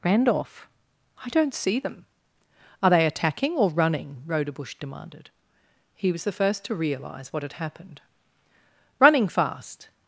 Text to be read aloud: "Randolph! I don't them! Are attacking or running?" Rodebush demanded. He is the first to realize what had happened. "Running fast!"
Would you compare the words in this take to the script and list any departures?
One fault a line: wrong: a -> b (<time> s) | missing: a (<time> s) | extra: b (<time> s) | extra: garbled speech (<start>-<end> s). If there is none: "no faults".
extra: see (1.5 s)
extra: they (2.9 s)
wrong: is -> was (6.1 s)